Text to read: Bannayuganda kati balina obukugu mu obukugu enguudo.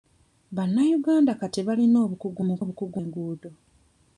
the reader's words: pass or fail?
pass